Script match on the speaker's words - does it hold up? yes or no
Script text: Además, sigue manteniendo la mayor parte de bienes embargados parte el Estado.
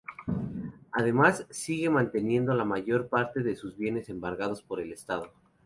no